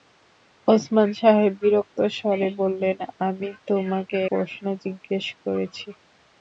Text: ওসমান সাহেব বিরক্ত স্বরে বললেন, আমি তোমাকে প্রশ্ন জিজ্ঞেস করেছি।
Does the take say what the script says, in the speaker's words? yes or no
yes